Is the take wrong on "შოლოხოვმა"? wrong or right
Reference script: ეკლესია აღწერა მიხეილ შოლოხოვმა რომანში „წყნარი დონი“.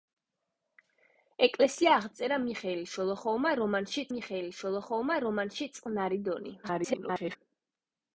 right